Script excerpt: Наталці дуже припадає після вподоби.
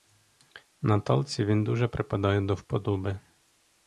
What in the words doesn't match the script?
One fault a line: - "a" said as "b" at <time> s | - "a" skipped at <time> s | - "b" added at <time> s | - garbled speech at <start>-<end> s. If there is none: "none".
- "він" added at 1.4 s
- "після" said as "до" at 2.4 s